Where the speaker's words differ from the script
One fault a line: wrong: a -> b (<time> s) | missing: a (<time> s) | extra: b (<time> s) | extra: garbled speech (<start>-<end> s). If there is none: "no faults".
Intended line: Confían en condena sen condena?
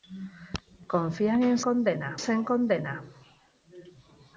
no faults